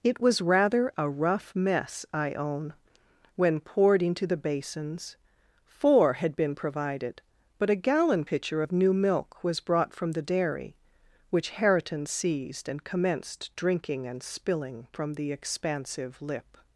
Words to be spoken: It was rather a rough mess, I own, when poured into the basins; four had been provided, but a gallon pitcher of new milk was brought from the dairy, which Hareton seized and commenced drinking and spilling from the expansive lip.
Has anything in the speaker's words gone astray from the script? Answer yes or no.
no